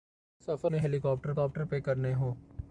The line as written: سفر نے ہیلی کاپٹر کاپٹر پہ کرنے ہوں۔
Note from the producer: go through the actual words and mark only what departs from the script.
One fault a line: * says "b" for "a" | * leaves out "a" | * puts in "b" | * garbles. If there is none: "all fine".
all fine